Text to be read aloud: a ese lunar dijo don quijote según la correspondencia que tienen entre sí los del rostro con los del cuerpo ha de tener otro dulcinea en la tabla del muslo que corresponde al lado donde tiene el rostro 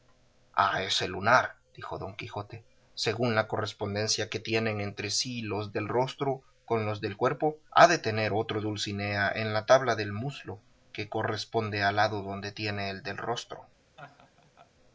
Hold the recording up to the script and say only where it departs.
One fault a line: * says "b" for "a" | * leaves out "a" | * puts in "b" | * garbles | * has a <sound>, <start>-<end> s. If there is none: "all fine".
* puts in "del"
* has a laugh, 14.0-14.7 s